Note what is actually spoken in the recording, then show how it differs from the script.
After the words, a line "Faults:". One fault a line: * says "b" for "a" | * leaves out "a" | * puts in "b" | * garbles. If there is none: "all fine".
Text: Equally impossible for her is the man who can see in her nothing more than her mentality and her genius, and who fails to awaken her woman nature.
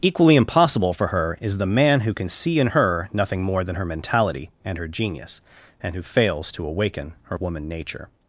Equally impossible for her is the man who can see in her nothing more than her mentality and her genius, and who fails to awaken her woman nature.
Faults:
all fine